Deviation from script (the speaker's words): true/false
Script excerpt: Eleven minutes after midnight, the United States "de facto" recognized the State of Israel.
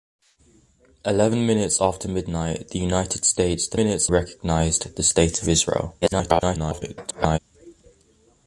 true